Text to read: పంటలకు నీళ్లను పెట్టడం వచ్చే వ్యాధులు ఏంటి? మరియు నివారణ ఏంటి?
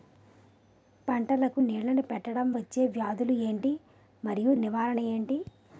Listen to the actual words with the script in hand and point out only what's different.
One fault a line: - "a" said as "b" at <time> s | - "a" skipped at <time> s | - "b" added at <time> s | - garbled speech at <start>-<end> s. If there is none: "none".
none